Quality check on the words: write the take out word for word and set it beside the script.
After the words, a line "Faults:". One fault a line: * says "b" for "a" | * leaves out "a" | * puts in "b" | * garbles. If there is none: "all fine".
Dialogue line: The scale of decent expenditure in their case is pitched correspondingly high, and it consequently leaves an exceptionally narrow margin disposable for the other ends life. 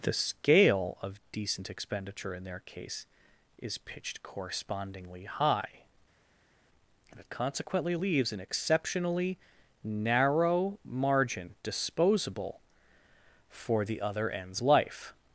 The scale of decent expenditure in their case is pitched correspondingly high, and it consequently leaves an exceptionally narrow margin disposable for the other ends life.
Faults:
all fine